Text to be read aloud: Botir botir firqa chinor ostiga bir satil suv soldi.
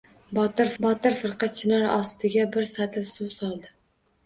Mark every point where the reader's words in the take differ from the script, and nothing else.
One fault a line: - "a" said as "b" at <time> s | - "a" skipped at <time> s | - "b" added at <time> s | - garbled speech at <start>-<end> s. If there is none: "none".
none